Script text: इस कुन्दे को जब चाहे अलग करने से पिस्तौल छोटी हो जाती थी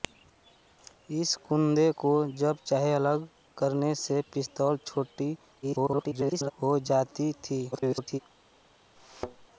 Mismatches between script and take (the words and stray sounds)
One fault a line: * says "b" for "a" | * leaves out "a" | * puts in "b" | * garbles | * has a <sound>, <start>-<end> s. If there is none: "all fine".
* garbles
* garbles
* has a thud, 9.0-9.5 s